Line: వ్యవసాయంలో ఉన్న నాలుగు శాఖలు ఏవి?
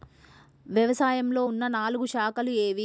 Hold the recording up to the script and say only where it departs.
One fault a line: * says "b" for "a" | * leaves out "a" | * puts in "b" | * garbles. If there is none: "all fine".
all fine